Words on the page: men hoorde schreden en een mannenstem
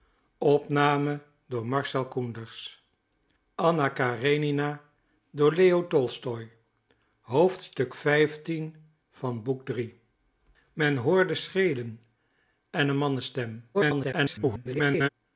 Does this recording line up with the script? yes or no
no